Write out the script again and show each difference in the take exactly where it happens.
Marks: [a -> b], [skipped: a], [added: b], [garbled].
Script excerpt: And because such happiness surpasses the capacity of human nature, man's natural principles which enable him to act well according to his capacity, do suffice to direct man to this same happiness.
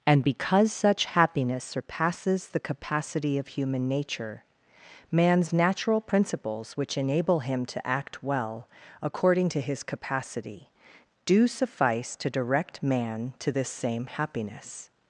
And because such happiness surpasses the capacity of human nature, man's natural principles which enable him to act well according to his capacity, do suffice to direct man to this same happiness.